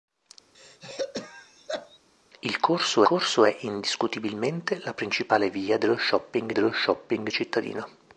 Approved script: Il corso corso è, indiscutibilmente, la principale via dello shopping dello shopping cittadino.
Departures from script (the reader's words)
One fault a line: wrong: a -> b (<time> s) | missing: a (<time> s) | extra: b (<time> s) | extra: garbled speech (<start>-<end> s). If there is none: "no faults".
no faults